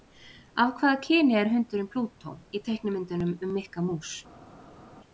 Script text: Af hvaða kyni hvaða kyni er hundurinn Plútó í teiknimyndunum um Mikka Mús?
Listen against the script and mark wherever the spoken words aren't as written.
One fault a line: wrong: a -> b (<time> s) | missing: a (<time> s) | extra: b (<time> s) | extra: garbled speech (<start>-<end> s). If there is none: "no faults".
missing: hvaða kyni (1.4 s)